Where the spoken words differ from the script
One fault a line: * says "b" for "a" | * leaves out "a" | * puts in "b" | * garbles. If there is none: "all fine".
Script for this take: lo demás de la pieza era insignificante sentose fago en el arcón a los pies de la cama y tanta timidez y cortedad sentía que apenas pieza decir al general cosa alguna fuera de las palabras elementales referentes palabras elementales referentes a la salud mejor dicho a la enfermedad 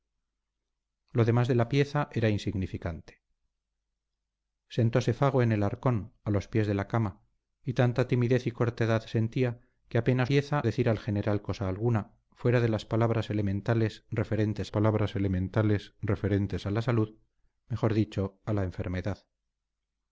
all fine